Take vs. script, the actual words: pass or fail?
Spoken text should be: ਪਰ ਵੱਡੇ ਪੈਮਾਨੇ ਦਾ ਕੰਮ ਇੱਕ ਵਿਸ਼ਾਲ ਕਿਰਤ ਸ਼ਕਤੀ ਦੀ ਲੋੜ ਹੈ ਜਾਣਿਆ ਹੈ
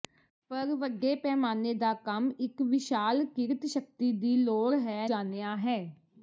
pass